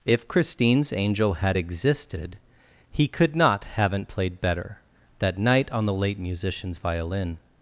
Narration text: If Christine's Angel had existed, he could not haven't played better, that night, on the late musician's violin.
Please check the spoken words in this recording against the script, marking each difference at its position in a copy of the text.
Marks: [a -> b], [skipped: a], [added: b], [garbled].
If Christine's Angel had existed, he could not haven't played better, that night, on the late musician's violin.